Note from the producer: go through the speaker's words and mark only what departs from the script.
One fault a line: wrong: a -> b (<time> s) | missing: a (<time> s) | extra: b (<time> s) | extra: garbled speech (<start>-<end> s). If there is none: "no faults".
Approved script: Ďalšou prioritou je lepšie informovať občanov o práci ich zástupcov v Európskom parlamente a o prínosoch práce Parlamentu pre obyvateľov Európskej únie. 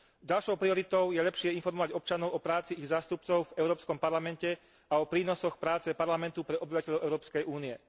no faults